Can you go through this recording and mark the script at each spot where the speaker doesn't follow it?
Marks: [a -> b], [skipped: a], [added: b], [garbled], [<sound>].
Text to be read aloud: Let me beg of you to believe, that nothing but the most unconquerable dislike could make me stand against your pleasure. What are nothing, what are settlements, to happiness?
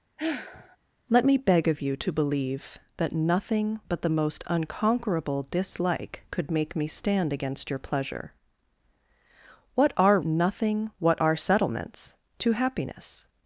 [sigh] Let me beg of you to believe, that nothing but the most unconquerable dislike could make me stand against your pleasure. What are nothing, what are settlements, to happiness?